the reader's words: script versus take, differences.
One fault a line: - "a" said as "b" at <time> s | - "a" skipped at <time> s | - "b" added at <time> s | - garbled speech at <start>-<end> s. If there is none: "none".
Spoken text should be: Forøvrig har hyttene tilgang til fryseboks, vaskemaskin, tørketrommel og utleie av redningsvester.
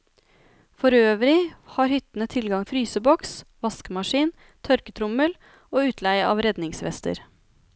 - "til" skipped at 2.6 s